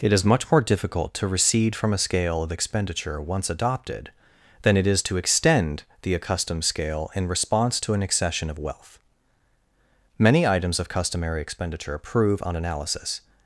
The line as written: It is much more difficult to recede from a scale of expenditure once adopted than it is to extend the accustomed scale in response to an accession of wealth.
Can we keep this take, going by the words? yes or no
no